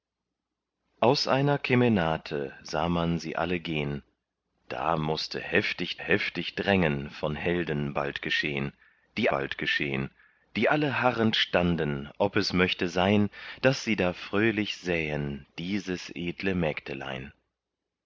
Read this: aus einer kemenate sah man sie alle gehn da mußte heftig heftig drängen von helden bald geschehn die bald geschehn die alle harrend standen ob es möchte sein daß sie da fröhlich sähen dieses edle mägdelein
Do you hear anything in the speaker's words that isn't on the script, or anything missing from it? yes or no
no